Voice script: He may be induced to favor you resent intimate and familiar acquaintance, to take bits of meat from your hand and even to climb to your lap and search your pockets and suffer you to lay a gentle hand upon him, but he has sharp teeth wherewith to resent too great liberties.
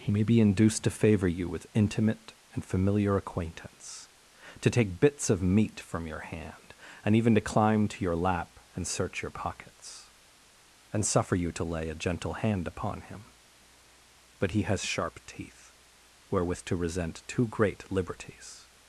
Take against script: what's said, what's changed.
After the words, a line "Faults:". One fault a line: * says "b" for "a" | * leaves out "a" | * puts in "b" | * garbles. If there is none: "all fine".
He may be induced to favor you with intimate and familiar acquaintance, to take bits of meat from your hand and even to climb to your lap and search your pockets and suffer you to lay a gentle hand upon him, but he has sharp teeth wherewith to resent too great liberties.
Faults:
* says "with" for "resent"